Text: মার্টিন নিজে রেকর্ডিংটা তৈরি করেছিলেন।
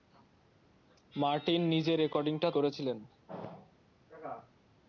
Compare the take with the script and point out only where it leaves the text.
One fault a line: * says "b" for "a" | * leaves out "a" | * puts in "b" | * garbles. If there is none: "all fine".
* leaves out "তৈরি"